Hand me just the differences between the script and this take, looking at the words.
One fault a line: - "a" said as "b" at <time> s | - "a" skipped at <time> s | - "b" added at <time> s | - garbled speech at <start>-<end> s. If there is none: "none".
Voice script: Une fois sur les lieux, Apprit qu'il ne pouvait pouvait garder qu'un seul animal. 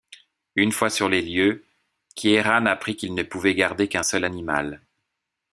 - "Kieran" added at 2.1 s
- "pouvait" skipped at 3.5 s